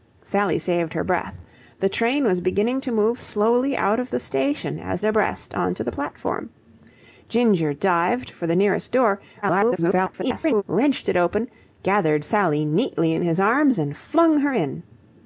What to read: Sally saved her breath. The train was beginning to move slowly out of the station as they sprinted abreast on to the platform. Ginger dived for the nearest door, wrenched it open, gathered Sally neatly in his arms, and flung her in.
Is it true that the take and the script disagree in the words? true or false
true